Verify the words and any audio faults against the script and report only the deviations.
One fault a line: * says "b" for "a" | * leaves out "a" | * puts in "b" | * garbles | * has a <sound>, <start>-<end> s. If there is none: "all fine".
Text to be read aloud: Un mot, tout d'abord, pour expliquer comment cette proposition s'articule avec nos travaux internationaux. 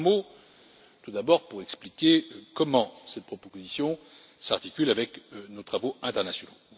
all fine